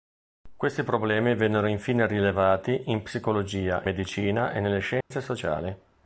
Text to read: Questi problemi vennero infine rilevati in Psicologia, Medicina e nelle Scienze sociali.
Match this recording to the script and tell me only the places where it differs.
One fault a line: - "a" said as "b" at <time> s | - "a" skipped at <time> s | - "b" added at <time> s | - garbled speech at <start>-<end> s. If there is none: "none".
none